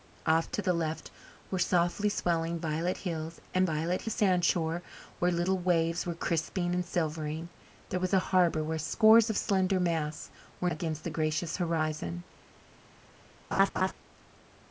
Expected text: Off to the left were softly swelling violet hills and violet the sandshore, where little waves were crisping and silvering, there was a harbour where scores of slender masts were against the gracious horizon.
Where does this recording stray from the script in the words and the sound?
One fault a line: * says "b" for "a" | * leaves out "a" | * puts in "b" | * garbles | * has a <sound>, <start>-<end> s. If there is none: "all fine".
* has a laugh, 13.5-13.9 s